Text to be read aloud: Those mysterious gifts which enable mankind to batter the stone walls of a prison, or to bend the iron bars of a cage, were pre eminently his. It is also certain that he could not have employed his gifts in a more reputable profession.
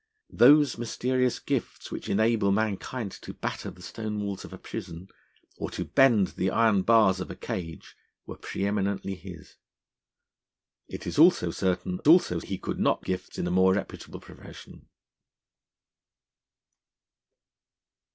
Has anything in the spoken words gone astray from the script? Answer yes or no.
yes